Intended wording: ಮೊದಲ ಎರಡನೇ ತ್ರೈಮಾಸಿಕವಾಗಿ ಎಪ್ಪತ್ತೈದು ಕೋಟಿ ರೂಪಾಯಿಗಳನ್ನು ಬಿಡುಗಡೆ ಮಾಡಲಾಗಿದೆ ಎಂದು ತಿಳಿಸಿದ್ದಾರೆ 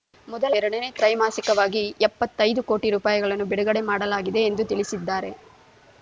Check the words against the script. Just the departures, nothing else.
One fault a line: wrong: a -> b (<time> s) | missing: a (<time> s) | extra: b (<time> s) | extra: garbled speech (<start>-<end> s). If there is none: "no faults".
no faults